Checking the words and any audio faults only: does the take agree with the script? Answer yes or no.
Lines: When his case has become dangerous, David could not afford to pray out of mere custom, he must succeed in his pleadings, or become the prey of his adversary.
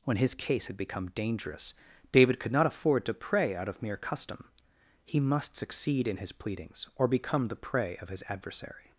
no